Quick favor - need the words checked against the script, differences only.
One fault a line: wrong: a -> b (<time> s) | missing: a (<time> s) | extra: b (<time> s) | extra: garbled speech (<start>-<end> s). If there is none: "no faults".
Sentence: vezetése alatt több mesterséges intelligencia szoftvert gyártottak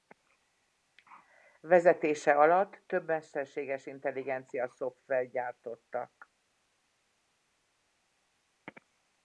no faults